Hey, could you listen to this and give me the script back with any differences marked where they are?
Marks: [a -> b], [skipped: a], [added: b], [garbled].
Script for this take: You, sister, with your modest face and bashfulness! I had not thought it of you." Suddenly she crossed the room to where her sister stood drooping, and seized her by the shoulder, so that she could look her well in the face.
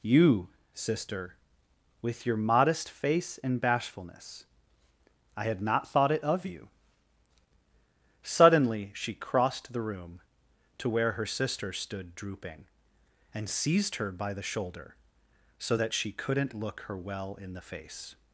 You, sister, with your modest face and bashfulness! I had not thought it of you." Suddenly she crossed the room to where her sister stood drooping, and seized her by the shoulder, so that she [could -> couldn't] look her well in the face.